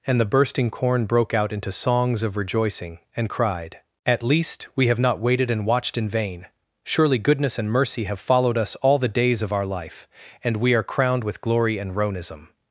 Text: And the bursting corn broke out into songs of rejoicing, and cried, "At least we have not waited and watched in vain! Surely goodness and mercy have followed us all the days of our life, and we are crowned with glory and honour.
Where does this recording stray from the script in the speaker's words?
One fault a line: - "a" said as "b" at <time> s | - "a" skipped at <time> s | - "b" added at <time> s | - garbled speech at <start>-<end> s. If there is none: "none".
- "honour" said as "ronism" at 11.9 s